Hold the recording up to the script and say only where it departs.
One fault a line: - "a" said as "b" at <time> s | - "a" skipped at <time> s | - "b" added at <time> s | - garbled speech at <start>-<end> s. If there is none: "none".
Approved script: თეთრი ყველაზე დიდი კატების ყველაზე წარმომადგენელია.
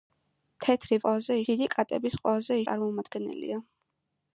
none